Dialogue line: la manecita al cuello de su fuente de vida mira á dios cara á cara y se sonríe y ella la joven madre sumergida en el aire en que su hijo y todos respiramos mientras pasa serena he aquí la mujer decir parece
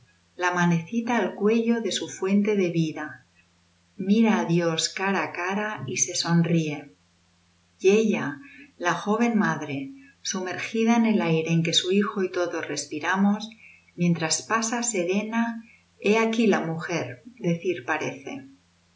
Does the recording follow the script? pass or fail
pass